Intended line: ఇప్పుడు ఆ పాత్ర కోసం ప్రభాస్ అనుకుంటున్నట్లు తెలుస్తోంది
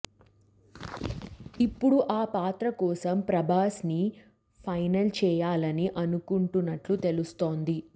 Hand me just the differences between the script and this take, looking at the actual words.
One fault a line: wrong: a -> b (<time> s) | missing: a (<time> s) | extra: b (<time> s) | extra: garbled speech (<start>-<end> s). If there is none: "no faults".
extra: ని ఫైనల్ చేయాలని (3.8 s)